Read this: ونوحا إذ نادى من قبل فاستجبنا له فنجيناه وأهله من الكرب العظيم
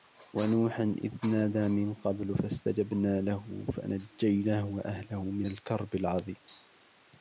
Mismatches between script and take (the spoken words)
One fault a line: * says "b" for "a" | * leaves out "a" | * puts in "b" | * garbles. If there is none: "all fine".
all fine